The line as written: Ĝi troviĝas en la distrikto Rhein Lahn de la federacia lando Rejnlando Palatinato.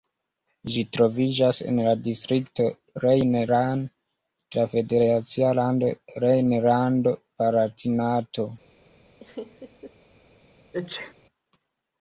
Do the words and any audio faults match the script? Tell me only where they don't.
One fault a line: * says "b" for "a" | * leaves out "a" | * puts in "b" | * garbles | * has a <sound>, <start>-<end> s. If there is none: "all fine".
* has a laugh, 9.2-9.9 s
* has a sneeze, 10.7-11.1 s